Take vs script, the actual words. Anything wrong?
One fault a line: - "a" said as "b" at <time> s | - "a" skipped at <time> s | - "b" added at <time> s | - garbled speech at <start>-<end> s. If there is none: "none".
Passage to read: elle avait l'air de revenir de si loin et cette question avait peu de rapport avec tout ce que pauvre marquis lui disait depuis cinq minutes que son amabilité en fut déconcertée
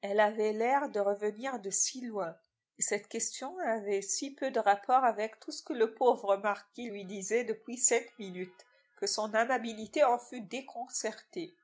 - "si" added at 4.0 s
- "le" added at 5.7 s